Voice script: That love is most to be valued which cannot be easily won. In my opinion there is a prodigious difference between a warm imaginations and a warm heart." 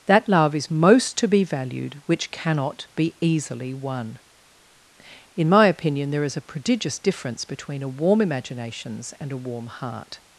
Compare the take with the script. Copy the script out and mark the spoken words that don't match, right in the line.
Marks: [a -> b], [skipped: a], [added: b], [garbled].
That love is most to be valued which cannot be easily won. In my opinion there is a prodigious difference between a warm imaginations and a warm heart."